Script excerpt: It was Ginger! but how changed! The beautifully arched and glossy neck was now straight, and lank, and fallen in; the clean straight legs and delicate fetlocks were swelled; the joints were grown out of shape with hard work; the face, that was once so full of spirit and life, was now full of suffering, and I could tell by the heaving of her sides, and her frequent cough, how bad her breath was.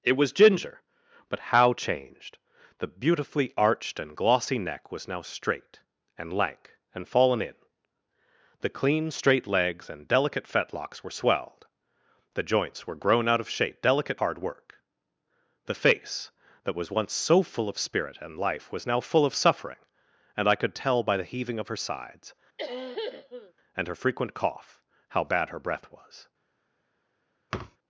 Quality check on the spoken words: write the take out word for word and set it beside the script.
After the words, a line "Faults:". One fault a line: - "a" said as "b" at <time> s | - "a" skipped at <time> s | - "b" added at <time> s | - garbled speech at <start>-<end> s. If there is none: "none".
It was Ginger! but how changed! The beautifully arched and glossy neck was now straight, and lank, and fallen in; the clean straight legs and delicate fetlocks were swelled; the joints were grown out of shape delicate hard work; the face, that was once so full of spirit and life, was now full of suffering, and I could tell by the heaving of her sides, and her frequent cough, how bad her breath was.
Faults:
- "with" said as "delicate" at 13.8 s